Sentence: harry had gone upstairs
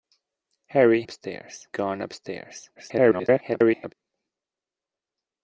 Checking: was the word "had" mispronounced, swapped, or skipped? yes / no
yes